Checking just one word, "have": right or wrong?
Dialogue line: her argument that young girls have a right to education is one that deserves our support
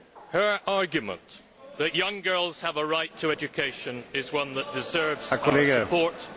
right